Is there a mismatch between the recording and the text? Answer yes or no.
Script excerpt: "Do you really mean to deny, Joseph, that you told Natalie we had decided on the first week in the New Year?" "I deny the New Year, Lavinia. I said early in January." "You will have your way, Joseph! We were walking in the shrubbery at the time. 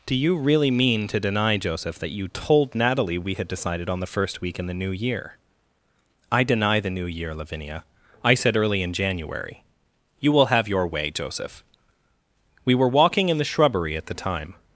no